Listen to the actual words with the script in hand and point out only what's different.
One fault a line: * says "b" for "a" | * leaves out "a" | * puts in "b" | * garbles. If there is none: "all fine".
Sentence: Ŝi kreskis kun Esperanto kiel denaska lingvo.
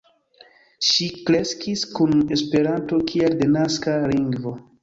all fine